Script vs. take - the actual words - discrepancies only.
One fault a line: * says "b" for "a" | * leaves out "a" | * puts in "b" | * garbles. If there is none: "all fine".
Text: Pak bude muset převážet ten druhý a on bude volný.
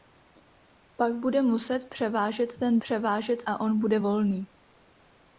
* says "převážet" for "druhý"